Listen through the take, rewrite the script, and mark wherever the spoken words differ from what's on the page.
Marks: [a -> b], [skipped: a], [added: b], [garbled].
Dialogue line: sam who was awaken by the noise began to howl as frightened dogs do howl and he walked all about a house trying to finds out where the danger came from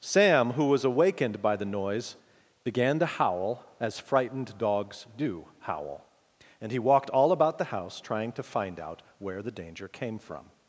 sam who was [awaken -> awakened] by the noise began to howl as frightened dogs do howl and he walked all about [a -> the] house trying to [finds -> find] out where the danger came from